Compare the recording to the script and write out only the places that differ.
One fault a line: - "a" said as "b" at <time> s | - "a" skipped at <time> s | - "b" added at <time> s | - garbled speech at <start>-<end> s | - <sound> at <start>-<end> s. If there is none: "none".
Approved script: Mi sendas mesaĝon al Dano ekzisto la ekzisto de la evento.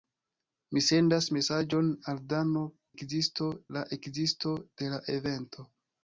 none